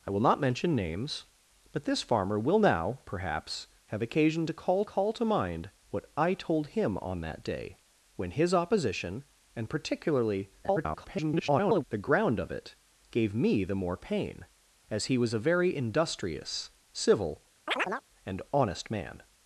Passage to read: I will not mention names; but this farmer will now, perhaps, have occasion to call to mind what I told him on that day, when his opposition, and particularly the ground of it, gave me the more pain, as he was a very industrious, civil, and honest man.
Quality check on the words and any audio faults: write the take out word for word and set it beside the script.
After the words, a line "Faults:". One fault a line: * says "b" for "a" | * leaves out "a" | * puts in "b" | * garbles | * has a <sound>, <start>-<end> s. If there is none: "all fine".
I will not mention names; but this farmer will now, perhaps, have occasion to call call to mind what I told him on that day, when his opposition, and particularly [garbled] the ground of it, gave me the more pain, as he was a very industrious, civil, and honest man.
Faults:
* puts in "call"
* garbles
* has a chirp, 17.7-18.0 s